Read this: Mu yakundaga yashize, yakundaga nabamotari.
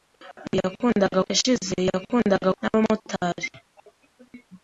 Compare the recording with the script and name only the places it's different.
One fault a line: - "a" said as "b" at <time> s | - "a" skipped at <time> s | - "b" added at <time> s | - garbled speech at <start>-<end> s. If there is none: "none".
none